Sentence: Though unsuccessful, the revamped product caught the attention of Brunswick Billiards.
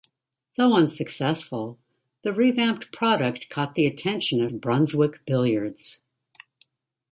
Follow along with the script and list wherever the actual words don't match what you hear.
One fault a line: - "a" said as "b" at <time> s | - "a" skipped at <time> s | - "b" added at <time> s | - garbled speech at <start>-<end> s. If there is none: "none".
none